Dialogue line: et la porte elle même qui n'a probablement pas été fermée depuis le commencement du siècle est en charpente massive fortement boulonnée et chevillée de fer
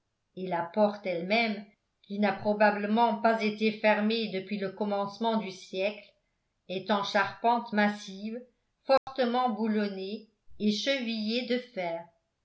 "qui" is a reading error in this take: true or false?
false